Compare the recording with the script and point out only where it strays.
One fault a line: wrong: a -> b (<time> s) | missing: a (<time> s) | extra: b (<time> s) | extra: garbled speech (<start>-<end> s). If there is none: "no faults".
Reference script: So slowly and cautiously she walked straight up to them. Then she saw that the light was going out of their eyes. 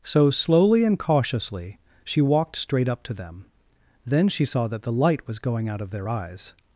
no faults